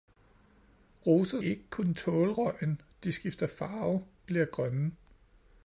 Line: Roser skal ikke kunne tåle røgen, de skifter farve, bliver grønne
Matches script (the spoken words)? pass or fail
fail